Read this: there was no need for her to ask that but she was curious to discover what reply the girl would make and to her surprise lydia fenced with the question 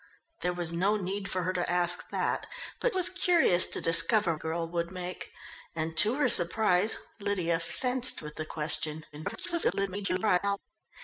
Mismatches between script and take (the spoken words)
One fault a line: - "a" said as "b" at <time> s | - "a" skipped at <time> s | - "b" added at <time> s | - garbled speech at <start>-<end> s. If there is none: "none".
- "she" skipped at 3.0 s
- "what reply the" skipped at 4.3 s
- garbled speech at 9.1-10.6 s